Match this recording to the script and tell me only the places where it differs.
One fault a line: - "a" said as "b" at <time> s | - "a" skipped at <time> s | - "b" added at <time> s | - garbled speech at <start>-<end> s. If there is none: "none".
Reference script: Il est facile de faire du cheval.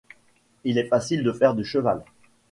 none